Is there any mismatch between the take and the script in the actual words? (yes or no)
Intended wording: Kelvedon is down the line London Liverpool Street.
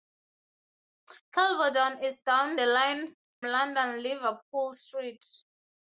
no